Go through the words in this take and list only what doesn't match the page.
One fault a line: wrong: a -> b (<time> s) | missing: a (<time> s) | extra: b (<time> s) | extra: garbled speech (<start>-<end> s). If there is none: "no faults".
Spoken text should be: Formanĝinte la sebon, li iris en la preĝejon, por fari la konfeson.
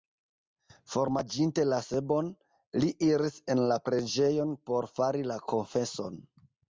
no faults